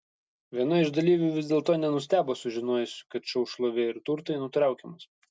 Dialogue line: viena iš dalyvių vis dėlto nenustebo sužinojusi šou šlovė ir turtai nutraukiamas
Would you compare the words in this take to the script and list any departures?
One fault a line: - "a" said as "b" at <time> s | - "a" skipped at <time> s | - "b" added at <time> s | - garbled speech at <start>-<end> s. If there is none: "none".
- "kad" added at 3.2 s